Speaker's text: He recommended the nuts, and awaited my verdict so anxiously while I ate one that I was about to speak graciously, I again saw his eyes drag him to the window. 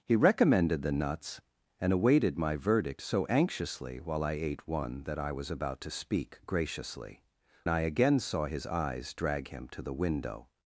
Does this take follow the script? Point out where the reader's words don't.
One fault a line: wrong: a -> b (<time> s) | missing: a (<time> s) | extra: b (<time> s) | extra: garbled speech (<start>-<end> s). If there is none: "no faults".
no faults